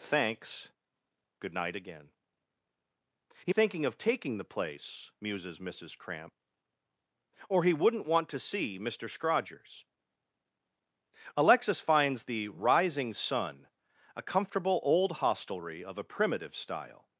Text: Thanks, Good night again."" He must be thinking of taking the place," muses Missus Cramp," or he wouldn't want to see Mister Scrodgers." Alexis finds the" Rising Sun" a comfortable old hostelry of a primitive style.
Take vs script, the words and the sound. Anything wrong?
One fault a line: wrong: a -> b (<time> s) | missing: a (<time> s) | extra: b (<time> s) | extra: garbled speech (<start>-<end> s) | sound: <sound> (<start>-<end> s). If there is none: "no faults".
missing: must be (3.5 s)